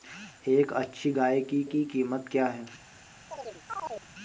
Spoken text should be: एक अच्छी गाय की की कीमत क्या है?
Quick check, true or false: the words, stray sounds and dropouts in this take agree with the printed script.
false